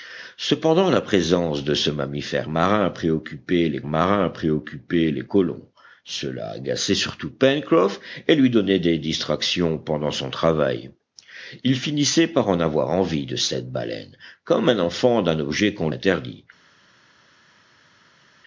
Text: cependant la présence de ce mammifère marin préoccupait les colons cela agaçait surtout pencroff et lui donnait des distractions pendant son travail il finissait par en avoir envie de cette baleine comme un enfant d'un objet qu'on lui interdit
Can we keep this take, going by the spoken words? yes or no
no